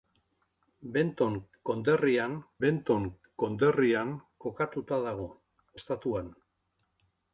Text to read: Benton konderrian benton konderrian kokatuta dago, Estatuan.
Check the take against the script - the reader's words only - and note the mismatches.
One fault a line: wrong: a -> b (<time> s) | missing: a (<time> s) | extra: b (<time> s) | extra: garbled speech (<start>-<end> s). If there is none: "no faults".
no faults